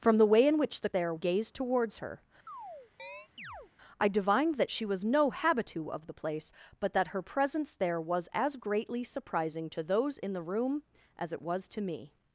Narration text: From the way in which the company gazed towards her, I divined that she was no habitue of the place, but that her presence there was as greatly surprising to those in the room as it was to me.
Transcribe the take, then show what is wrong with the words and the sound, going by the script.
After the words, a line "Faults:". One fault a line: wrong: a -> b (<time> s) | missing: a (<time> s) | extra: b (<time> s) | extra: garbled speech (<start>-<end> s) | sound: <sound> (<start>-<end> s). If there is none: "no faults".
From the way in which the there gazed towards her, I divined that she was no habitue of the place, but that her presence there was as greatly surprising to those in the room as it was to me.
Faults:
wrong: company -> there (0.9 s)
sound: chirp (2.5-3.7 s)